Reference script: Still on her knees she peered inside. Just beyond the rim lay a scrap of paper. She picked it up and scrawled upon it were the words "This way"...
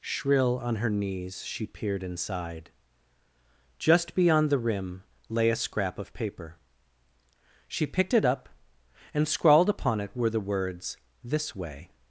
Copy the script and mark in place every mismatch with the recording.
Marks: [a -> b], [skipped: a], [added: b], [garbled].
[Still -> Shrill] on her knees she peered inside. Just beyond the rim lay a scrap of paper. She picked it up and scrawled upon it were the words "This way"...